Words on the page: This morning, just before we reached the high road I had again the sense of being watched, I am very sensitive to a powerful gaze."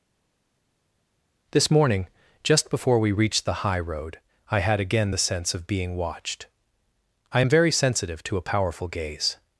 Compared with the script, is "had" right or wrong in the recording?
right